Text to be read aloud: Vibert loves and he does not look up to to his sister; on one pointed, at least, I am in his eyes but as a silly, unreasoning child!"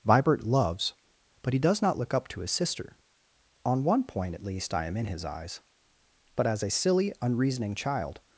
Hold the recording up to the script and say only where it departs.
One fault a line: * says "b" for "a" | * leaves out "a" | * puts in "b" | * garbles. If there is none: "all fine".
* says "but" for "and"
* leaves out "to"
* says "point" for "pointed"